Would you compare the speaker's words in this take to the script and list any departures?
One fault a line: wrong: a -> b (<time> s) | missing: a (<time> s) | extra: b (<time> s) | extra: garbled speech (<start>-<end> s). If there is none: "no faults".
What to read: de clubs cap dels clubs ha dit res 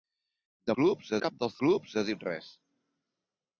no faults